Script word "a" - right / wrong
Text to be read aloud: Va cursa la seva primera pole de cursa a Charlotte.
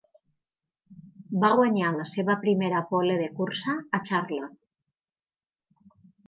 right